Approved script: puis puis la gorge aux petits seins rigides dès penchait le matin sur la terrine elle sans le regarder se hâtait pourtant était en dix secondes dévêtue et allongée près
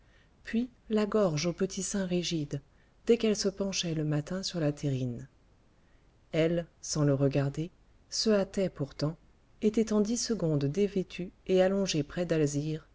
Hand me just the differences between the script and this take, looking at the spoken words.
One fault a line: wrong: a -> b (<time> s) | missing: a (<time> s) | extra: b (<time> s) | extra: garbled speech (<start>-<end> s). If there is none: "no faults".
missing: puis (0.7 s)
extra: qu'elle se (3.2 s)